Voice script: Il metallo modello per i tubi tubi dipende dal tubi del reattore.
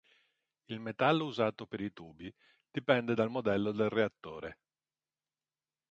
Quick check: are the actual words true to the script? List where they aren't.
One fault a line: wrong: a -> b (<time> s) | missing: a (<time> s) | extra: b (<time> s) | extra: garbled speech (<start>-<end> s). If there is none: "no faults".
wrong: modello -> usato (1.2 s)
missing: tubi (2.3 s)
wrong: tubi -> modello (3.3 s)